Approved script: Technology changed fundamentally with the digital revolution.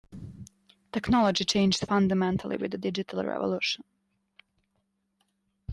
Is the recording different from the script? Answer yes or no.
no